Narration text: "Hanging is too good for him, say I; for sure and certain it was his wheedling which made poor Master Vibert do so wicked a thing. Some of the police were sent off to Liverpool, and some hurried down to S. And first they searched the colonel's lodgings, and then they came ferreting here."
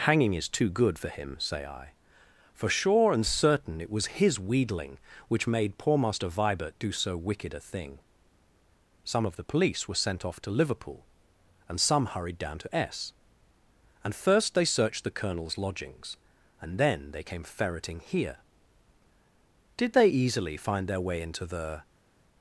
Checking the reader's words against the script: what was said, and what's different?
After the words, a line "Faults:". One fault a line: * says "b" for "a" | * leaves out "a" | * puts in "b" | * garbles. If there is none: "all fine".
"Hanging is too good for him, say I; for sure and certain it was his wheedling which made poor Master Vibert do so wicked a thing. Some of the police were sent off to Liverpool, and some hurried down to S. And first they searched the colonel's lodgings, and then they came ferreting here." "Did they easily find their way into the
Faults:
* puts in "Did they easily find their way into the"